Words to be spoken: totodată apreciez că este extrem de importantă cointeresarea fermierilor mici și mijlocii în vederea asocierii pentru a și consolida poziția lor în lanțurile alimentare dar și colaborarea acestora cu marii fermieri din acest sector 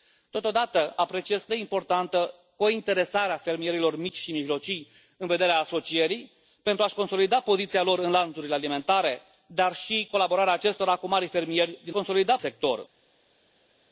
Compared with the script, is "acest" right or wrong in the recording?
wrong